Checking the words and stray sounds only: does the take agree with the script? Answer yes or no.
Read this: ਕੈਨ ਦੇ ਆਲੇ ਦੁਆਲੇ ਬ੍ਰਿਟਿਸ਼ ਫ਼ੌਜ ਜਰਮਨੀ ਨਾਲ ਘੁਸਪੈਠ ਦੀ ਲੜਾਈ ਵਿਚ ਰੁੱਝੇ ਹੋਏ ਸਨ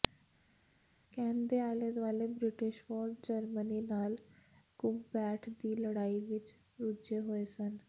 yes